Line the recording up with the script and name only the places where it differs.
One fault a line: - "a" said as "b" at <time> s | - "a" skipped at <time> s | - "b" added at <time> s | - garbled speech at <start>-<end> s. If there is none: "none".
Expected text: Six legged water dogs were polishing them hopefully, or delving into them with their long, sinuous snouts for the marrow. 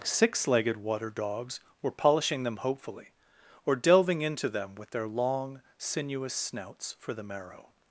none